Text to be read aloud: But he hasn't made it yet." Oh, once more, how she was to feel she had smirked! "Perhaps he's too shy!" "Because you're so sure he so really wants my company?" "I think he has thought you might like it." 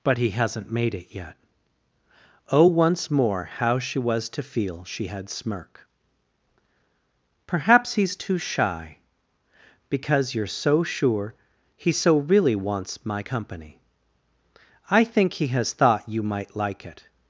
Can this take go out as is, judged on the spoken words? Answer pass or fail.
fail